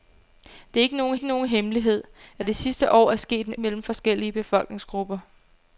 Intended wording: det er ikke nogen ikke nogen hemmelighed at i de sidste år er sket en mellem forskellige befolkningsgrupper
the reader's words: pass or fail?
pass